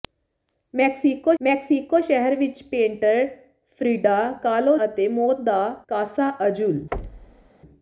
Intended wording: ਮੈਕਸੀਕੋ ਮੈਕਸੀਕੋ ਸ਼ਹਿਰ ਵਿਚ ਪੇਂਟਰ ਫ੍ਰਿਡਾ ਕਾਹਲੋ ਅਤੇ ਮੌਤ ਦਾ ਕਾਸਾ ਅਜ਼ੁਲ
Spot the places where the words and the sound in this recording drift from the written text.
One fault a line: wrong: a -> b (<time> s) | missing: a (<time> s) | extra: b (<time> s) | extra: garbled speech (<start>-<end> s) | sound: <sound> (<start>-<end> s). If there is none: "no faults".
sound: thud (6.9-7.5 s)